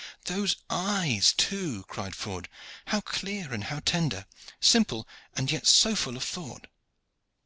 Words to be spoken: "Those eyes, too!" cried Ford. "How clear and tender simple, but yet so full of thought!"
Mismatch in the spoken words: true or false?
true